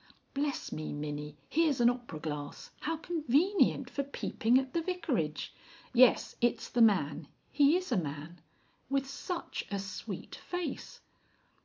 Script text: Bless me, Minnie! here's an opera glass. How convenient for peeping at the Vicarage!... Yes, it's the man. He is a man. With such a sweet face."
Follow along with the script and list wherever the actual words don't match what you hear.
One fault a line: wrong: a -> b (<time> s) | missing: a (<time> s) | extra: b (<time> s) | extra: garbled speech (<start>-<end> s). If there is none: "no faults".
no faults